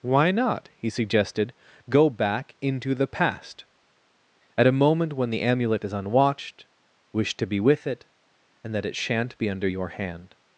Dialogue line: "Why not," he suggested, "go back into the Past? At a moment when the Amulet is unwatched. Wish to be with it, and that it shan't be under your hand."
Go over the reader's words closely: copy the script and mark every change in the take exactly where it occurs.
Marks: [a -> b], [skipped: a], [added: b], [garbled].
"Why not," he suggested, "go back into the Past? At a moment when the Amulet is unwatched. Wish to be with it, and that it shan't be under your hand."